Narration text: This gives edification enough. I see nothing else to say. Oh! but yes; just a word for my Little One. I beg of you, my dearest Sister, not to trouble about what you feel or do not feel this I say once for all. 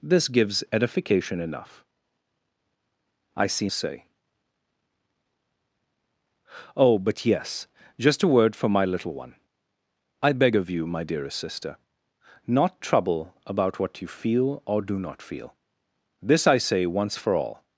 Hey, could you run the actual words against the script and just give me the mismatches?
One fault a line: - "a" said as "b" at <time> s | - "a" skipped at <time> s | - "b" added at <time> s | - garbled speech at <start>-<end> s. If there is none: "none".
- "nothing else to" skipped at 3.7 s
- "to" skipped at 12.8 s